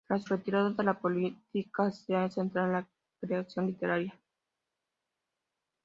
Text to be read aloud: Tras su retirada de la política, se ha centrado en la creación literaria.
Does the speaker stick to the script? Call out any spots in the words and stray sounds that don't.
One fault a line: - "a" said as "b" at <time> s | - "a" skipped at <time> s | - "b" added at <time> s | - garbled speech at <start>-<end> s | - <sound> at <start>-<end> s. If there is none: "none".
- "su" skipped at 0.2 s